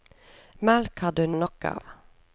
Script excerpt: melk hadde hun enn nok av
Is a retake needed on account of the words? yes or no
no